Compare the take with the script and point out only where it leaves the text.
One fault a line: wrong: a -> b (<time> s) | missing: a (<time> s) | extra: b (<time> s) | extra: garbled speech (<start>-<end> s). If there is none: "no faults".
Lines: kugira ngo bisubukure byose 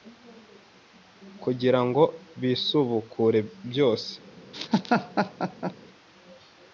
no faults